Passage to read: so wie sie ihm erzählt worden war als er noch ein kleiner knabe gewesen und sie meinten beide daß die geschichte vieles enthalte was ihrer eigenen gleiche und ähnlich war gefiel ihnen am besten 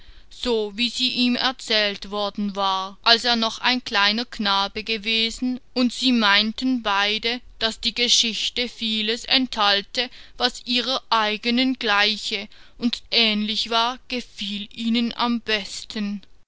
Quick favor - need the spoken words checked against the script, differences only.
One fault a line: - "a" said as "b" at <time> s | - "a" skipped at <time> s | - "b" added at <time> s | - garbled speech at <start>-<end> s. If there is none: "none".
none